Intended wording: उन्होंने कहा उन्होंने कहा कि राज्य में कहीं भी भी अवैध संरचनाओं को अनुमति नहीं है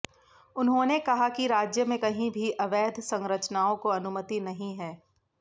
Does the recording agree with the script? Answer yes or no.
no